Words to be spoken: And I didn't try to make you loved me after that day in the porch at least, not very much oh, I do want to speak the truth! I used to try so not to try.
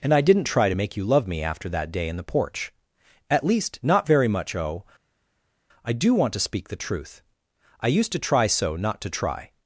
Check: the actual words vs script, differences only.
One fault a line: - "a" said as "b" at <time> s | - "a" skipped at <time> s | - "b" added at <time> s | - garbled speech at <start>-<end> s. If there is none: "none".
- "loved" said as "love" at 1.0 s